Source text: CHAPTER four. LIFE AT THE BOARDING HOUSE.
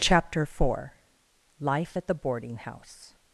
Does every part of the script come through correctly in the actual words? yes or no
yes